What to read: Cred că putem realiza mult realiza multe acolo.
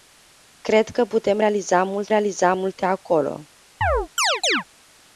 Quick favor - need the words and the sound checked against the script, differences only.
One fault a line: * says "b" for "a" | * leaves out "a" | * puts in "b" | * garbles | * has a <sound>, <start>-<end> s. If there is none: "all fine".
* has a chirp, 3.8-4.6 s